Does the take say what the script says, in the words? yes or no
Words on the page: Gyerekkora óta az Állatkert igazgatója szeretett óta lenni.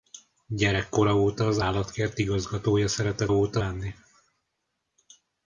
yes